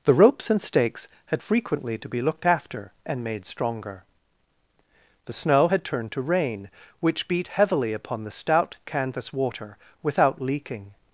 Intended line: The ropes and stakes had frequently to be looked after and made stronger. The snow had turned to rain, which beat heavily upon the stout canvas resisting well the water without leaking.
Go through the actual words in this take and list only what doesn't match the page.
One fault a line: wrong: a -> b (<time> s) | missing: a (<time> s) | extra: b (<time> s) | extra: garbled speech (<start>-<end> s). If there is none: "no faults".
missing: resisting well the (9.3 s)